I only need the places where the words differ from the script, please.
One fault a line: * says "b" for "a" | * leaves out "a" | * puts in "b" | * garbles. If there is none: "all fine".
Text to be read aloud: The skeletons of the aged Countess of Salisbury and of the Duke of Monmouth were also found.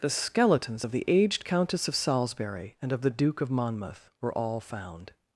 * says "all" for "also"